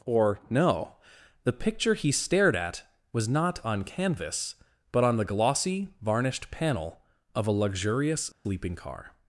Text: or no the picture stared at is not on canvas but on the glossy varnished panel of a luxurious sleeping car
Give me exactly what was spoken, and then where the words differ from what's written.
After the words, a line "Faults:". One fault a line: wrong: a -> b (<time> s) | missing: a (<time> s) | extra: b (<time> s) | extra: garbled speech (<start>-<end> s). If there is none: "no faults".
or no the picture he stared at was not on canvas but on the glossy varnished panel of a luxurious sleeping car
Faults:
extra: he (1.9 s)
wrong: is -> was (3.1 s)